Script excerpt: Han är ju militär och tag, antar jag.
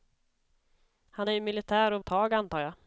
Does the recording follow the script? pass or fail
pass